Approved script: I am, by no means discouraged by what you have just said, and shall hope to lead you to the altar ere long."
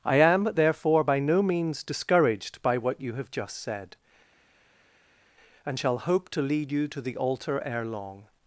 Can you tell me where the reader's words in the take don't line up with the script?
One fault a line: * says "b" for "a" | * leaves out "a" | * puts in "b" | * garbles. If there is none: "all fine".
* puts in "therefore"